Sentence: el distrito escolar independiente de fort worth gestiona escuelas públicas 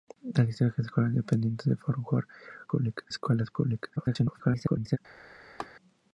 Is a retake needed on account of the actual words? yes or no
yes